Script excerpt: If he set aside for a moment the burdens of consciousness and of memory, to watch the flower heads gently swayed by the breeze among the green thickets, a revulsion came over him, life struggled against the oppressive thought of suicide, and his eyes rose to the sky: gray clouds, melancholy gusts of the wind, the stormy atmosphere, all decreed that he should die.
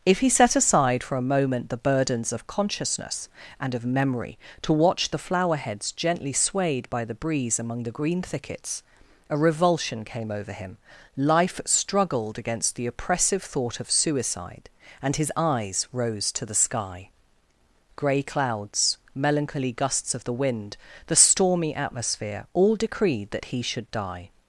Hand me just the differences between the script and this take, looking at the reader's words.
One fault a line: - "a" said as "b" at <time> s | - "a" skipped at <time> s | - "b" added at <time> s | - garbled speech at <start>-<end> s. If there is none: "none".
none